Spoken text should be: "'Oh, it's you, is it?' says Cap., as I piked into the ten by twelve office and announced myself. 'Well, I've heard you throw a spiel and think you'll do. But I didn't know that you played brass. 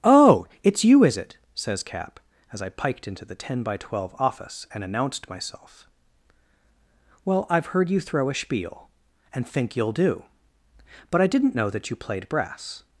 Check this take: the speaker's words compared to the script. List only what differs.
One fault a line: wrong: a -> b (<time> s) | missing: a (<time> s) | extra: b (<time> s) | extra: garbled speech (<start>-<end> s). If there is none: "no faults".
no faults